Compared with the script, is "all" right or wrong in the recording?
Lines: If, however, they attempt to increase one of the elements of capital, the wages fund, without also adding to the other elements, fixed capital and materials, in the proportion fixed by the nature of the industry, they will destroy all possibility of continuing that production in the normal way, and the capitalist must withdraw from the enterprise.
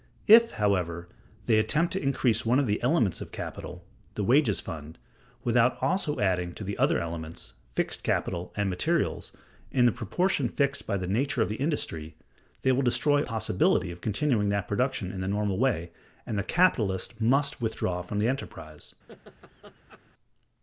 wrong